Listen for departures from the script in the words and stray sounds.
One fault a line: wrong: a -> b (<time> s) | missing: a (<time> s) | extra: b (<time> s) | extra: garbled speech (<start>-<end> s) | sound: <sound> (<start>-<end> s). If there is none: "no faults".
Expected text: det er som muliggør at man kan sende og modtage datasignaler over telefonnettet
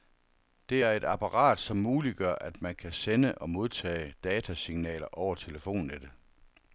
extra: et apparat (0.9 s)